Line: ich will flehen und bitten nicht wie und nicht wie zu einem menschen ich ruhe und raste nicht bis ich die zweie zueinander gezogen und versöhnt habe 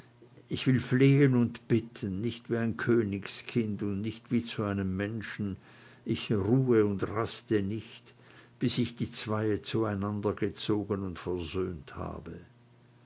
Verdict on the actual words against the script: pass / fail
fail